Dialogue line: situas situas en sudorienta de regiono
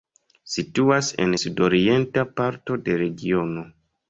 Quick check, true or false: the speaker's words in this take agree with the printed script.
false